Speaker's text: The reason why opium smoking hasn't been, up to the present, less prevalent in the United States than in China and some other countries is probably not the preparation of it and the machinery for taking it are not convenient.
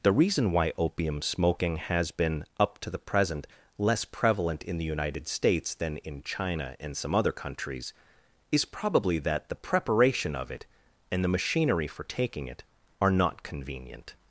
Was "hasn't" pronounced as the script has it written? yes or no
no